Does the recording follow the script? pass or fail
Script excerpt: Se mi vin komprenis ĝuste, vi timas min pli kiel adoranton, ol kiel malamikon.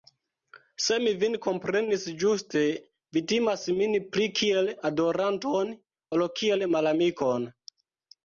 pass